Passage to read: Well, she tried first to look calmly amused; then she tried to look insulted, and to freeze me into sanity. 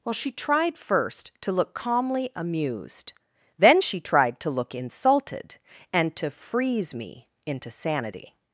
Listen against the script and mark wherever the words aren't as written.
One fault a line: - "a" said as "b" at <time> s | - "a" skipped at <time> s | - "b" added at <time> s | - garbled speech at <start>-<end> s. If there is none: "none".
none